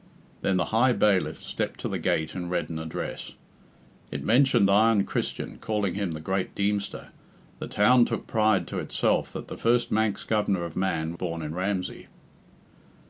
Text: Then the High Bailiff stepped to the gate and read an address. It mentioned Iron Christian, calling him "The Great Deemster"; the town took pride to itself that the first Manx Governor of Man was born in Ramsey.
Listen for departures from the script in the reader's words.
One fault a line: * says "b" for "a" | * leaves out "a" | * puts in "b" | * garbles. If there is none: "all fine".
* leaves out "was"